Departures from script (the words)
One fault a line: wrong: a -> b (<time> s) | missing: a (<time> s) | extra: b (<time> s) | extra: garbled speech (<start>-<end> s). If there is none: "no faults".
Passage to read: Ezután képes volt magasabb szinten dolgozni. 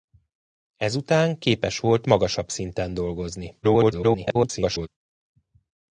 extra: garbled speech (3.6-4.9 s)